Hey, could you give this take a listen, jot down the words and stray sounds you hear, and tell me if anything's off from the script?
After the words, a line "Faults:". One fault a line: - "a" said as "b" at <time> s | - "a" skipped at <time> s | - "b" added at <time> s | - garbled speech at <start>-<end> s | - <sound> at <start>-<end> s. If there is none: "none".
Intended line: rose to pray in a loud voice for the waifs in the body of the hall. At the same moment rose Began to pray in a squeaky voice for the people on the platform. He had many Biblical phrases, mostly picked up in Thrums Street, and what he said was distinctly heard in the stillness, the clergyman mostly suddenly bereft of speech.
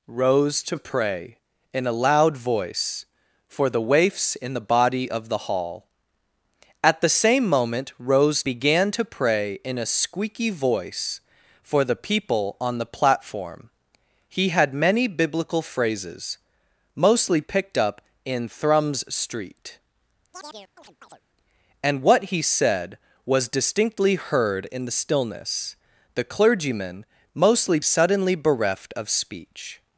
rose to pray in a loud voice for the waifs in the body of the hall. At the same moment rose Began to pray in a squeaky voice for the people on the platform. He had many Biblical phrases, mostly picked up in Thrums Street, and what he said was distinctly heard in the stillness, the clergyman mostly suddenly bereft of speech.
Faults:
- chirp at 20.3-21.2 s